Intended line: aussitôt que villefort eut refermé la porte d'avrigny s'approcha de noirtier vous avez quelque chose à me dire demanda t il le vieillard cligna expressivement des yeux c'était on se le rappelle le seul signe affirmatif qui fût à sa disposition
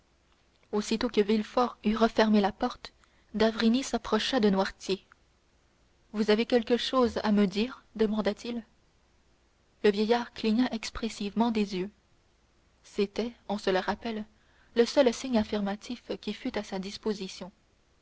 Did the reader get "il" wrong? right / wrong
right